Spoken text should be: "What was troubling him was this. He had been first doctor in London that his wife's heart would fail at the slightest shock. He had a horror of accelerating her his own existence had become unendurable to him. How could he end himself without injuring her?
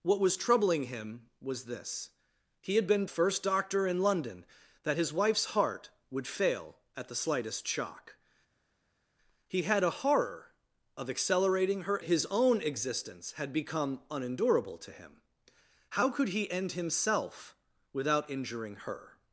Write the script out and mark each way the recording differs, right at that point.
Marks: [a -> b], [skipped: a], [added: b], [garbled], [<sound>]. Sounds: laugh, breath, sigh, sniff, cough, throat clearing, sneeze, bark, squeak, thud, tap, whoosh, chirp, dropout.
"What was troubling him was this. He had been first doctor in London that his wife's heart would fail at the slightest shock. He had a horror of accelerating her his own existence had become unendurable to him. How could he end himself without injuring her?